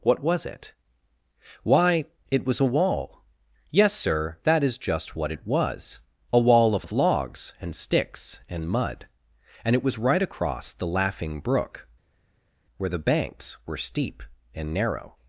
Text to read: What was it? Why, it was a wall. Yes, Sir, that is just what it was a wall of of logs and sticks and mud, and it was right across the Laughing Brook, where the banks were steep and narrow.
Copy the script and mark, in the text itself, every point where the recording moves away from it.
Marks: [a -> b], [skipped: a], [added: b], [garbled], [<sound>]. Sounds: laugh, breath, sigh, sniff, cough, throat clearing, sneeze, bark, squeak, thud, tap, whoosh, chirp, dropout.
What was it? Why, it was a wall. Yes, Sir, that is just what it was a wall of of logs and sticks and mud, and it was right across the Laughing Brook, where the banks were steep and narrow.